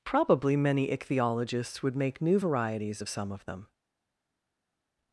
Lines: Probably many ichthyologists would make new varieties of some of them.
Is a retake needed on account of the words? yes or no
no